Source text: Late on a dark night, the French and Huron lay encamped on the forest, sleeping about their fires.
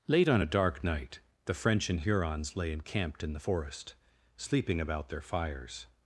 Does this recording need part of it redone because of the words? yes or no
yes